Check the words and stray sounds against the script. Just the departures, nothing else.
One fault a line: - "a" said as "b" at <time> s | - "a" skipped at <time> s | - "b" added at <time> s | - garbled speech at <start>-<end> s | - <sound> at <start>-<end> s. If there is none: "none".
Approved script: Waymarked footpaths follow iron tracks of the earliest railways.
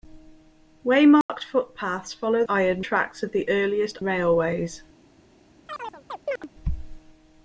- dropout at 1.2-1.3 s
- chirp at 5.7-6.5 s